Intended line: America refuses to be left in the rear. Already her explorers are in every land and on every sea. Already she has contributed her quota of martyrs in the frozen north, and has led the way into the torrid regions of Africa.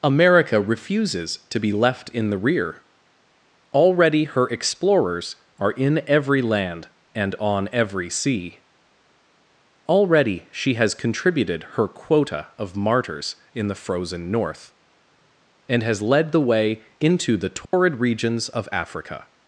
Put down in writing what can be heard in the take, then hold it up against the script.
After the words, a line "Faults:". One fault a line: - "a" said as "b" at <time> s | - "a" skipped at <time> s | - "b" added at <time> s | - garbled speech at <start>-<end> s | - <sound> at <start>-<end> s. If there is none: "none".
America refuses to be left in the rear. Already her explorers are in every land and on every sea. Already she has contributed her quota of martyrs in the frozen north, and has led the way into the torrid regions of Africa.
Faults:
- dropout at 17.6-17.7 s